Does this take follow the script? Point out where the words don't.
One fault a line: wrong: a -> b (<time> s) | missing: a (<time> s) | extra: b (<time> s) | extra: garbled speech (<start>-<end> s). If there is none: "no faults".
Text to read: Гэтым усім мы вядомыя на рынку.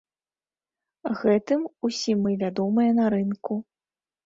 no faults